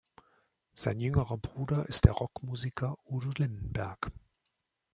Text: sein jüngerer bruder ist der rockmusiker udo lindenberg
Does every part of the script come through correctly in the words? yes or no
yes